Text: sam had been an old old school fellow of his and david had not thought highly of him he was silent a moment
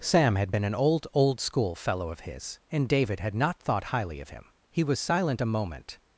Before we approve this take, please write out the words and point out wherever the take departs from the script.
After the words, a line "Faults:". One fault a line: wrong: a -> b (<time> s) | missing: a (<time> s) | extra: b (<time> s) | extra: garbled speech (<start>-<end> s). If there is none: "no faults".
sam had been an old old school fellow of his and david had not thought highly of him he was silent a moment
Faults:
no faults